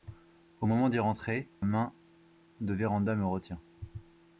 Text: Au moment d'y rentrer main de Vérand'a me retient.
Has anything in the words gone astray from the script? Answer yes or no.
no